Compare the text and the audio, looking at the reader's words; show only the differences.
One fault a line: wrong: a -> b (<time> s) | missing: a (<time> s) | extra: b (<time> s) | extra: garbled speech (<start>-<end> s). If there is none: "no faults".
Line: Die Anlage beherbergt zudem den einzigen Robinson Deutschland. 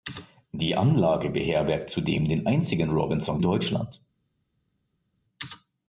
no faults